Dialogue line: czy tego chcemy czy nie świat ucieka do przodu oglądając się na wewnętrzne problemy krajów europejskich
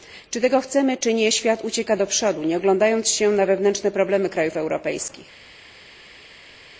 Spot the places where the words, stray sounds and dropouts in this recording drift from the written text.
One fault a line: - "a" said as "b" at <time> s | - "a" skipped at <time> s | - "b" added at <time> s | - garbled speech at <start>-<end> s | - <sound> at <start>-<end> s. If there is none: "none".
- "nie" added at 2.4 s